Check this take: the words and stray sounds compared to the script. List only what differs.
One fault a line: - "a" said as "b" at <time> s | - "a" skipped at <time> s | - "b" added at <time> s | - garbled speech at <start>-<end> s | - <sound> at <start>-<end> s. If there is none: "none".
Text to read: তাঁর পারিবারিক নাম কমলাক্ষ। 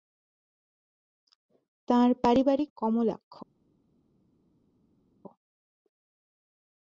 - "নাম" skipped at 2.7 s